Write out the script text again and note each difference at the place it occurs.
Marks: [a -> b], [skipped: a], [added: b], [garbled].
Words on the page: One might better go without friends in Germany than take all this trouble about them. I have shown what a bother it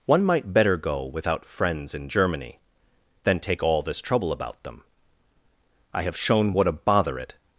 One might better go without friends in Germany than take all this trouble about them. I have shown what a bother it